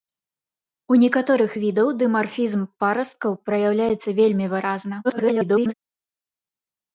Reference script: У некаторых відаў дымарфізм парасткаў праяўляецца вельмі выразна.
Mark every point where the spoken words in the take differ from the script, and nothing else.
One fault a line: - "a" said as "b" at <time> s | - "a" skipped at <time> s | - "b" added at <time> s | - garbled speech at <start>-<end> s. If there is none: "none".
- garbled speech at 5.0-5.7 s